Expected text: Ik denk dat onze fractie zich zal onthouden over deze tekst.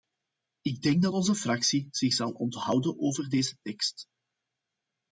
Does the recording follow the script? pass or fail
pass